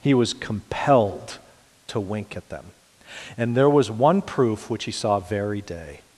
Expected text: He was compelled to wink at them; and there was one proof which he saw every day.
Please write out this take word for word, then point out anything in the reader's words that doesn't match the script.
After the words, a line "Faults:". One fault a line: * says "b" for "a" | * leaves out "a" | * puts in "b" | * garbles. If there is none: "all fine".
He was compelled to wink at them; and there was one proof which he saw very day.
Faults:
* says "very" for "every"